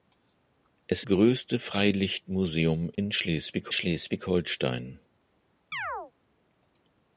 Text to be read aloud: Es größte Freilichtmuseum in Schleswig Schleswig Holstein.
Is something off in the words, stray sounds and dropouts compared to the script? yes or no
yes